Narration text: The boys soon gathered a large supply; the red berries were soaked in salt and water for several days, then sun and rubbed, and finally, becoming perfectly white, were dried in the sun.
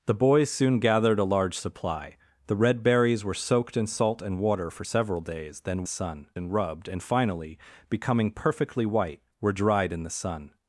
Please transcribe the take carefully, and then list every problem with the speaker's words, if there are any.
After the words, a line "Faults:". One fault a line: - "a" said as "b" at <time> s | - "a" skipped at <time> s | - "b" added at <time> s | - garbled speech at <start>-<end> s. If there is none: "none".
The boys soon gathered a large supply; the red berries were soaked in salt and water for several days, then sun and rubbed, and finally, becoming perfectly white, were dried in the sun.
Faults:
none